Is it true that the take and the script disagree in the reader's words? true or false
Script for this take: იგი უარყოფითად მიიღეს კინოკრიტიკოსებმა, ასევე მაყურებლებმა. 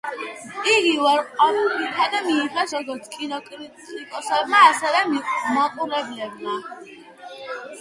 true